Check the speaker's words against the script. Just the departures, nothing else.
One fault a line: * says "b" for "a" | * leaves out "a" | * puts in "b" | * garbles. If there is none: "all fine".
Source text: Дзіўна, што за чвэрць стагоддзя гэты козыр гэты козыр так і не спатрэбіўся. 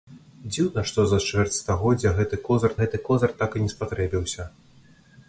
all fine